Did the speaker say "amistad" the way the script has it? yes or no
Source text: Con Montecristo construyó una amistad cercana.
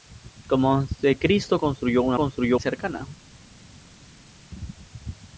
no